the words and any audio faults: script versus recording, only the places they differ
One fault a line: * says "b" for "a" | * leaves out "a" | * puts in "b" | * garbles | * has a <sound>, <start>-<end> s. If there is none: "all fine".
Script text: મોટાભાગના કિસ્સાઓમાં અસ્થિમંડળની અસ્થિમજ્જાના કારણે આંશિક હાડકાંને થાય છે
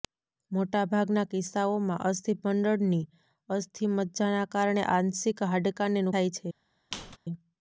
* has a squeak, 6.9-7.2 s